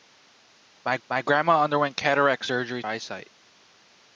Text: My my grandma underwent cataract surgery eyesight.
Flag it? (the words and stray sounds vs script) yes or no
no